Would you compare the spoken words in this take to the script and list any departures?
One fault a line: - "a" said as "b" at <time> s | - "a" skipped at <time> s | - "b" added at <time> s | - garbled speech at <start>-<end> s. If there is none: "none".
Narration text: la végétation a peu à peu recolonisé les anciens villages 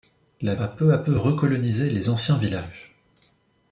- "végétation" skipped at 0.6 s